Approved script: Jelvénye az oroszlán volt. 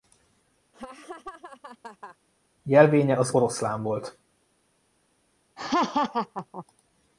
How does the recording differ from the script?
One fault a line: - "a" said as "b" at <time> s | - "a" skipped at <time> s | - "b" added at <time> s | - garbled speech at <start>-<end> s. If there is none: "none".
none